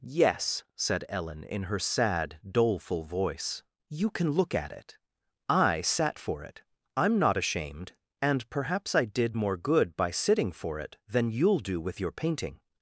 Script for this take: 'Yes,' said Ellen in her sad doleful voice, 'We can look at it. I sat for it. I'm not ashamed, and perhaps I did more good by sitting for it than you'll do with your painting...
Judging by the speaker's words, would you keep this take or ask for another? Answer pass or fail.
fail